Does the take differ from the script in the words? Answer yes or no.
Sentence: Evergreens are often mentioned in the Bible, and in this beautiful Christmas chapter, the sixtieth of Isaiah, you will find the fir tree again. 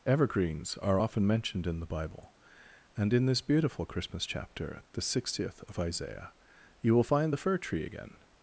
no